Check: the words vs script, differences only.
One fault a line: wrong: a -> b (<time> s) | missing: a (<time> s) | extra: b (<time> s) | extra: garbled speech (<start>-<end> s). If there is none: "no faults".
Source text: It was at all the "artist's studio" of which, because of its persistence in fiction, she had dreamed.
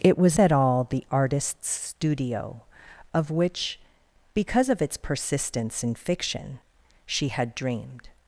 no faults